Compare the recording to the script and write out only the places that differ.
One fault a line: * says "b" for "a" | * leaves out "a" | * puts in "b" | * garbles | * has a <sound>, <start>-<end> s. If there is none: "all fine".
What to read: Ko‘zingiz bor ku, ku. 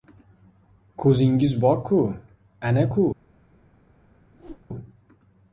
* puts in "ana"
* has a whoosh, 4.3-4.7 s